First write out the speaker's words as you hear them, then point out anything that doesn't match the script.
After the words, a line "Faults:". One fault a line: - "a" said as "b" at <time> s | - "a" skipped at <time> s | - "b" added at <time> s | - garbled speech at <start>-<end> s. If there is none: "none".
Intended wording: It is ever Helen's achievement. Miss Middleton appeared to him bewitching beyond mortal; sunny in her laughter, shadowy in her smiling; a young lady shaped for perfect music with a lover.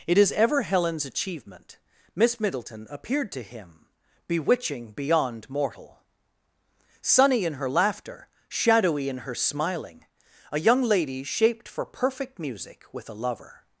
It is ever Helen's achievement. Miss Middleton appeared to him bewitching beyond mortal; sunny in her laughter, shadowy in her smiling; a young lady shaped for perfect music with a lover.
Faults:
none